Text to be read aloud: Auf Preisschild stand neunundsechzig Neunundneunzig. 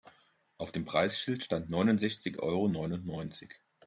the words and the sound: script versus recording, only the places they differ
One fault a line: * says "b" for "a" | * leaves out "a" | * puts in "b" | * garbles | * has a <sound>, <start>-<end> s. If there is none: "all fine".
* puts in "dem"
* puts in "Euro"